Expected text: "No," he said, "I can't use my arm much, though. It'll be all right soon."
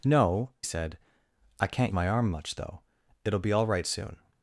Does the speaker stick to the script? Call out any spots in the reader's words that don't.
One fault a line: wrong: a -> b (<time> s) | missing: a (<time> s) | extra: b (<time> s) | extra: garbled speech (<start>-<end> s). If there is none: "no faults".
missing: he (0.5 s)
missing: use (1.9 s)